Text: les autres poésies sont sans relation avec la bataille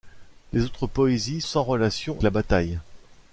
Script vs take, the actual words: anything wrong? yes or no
yes